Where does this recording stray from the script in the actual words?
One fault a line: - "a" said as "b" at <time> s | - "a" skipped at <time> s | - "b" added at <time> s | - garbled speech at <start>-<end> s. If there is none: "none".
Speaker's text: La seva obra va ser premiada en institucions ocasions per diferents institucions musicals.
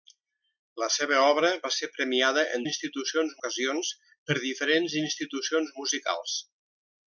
none